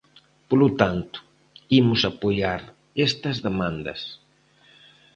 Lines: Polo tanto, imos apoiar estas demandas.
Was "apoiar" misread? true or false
false